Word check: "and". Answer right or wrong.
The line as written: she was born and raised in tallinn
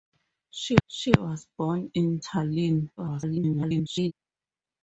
wrong